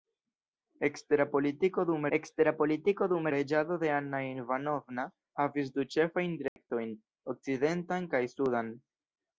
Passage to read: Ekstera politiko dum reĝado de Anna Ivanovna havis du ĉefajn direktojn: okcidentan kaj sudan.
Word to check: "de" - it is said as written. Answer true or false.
true